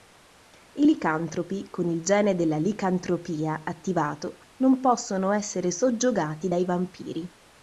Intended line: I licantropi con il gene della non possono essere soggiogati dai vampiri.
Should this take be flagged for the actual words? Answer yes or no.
yes